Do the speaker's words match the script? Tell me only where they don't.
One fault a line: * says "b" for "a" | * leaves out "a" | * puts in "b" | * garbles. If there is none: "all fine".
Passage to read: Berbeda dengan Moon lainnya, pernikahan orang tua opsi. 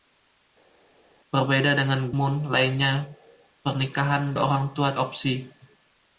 all fine